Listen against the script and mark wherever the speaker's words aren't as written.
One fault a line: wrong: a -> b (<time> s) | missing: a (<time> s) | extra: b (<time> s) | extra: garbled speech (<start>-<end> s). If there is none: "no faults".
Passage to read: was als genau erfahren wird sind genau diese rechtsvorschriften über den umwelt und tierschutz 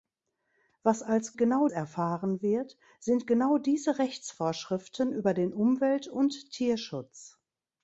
no faults